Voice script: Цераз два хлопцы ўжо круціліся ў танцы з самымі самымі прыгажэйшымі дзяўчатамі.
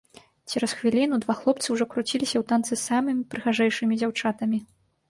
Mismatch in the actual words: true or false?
true